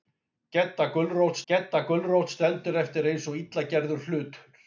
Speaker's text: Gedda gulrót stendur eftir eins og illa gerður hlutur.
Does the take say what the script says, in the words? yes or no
no